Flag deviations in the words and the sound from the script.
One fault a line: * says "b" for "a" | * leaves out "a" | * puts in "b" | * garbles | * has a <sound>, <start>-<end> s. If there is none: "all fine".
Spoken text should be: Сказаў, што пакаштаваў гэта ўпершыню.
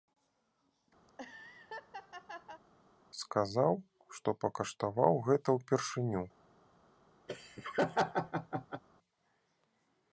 * has a laugh, 1.1-2.6 s
* has a laugh, 7.3-8.8 s